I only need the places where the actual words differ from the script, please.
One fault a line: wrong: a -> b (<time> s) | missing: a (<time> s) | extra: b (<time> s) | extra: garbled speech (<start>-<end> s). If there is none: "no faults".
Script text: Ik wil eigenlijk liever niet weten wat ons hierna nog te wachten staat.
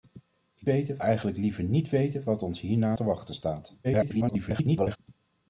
wrong: wil -> weten (0.6 s)
missing: nog (3.0 s)
extra: garbled speech (3.8-5.0 s)